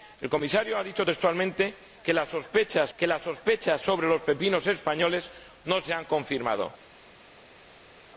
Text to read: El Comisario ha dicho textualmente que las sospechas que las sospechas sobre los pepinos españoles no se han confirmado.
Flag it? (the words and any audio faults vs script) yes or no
no